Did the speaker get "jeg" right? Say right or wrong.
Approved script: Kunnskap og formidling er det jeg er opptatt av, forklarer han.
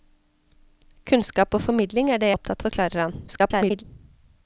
wrong